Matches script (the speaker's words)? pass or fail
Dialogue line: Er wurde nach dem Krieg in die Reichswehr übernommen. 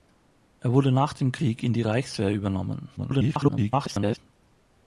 fail